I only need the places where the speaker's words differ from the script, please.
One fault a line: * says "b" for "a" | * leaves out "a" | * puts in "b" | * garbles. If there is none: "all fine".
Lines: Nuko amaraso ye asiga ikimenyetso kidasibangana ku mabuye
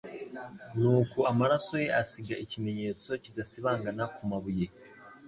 all fine